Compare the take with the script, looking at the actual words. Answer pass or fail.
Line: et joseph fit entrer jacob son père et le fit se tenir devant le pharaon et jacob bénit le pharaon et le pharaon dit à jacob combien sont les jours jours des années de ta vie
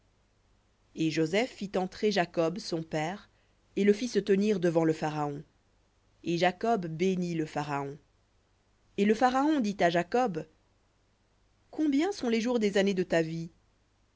fail